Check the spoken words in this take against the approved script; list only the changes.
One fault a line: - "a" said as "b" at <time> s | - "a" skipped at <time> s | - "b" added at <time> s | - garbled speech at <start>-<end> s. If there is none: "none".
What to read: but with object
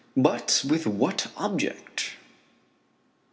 - "what" added at 0.9 s